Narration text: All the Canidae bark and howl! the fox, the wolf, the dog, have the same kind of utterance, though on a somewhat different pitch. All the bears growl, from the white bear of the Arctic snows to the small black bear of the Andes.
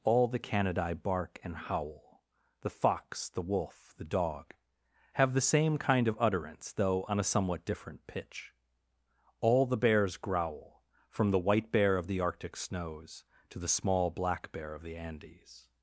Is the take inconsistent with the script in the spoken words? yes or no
no